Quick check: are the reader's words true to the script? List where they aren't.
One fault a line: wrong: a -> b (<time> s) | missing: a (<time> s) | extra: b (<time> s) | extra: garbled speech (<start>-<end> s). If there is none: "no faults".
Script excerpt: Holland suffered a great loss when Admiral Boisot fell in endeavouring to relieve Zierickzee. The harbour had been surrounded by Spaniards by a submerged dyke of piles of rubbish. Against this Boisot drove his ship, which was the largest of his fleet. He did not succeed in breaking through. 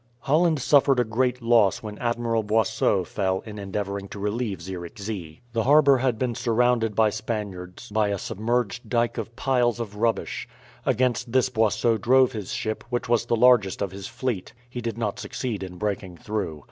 no faults